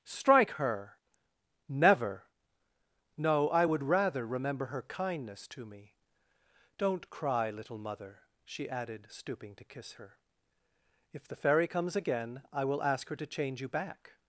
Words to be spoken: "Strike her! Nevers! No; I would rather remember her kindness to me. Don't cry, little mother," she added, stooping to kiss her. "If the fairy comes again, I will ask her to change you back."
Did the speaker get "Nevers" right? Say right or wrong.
wrong